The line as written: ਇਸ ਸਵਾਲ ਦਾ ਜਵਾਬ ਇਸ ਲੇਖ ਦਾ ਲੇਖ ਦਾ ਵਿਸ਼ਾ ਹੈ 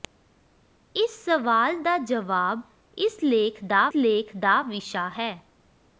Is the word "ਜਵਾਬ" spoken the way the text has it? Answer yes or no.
yes